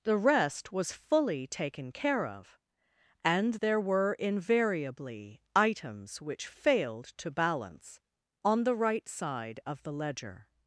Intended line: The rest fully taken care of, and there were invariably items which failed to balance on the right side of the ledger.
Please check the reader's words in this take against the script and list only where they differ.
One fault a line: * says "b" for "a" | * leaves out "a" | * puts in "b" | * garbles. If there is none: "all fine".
* puts in "was"